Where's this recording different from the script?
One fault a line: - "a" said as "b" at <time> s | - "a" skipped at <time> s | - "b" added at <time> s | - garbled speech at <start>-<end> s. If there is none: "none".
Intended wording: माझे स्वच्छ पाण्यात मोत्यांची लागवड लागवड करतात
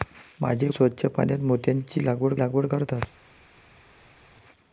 none